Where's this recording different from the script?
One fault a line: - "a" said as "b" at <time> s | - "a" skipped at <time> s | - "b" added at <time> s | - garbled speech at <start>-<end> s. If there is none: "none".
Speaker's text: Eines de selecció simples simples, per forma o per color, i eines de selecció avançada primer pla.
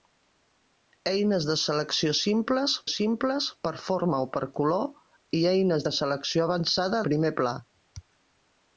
none